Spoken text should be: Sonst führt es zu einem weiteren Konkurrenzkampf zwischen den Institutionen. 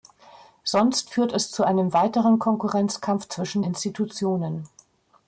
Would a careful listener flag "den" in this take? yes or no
yes